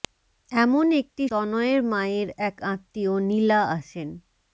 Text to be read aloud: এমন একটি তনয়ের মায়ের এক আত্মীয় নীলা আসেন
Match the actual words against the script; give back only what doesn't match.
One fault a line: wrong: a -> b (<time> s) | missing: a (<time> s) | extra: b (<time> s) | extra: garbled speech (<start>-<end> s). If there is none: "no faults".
no faults